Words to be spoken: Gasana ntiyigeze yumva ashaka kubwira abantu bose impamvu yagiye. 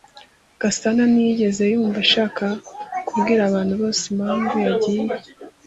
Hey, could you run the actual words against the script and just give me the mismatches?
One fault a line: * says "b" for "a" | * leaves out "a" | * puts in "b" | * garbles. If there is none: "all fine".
all fine